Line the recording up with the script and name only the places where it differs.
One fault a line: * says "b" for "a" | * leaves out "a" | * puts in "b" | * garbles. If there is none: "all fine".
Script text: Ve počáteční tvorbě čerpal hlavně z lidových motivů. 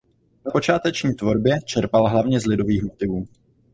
all fine